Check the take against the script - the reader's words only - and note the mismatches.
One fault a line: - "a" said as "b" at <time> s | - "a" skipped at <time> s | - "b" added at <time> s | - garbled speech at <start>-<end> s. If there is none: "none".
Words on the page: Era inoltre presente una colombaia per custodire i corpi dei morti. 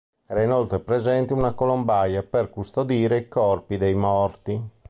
none